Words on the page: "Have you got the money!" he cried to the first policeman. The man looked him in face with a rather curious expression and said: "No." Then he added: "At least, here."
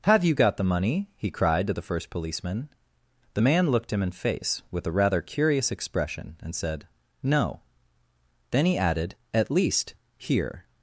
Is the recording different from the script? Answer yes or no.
no